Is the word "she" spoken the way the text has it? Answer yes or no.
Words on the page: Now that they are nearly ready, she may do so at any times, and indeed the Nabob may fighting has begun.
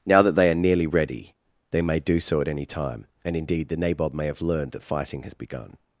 no